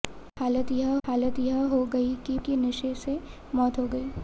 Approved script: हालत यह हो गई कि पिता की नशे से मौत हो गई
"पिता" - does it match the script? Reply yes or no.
no